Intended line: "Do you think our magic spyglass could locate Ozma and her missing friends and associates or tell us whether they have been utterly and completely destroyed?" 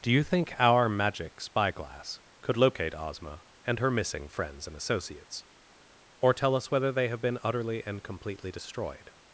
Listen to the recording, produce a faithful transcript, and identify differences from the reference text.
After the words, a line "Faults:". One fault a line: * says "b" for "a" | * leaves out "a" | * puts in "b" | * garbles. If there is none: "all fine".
"Do you think our magic spyglass could locate Ozma and her missing friends and associates or tell us whether they have been utterly and completely destroyed?"
Faults:
all fine